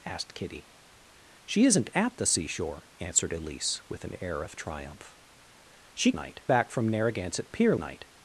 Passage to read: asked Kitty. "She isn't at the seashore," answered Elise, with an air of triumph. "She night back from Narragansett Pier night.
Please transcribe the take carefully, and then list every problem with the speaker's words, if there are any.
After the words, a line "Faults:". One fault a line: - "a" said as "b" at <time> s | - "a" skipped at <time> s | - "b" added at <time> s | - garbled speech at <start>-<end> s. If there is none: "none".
asked Kitty. "She isn't at the seashore," answered Elise, with an air of triumph. "She night back from Narragansett Pier night.
Faults:
none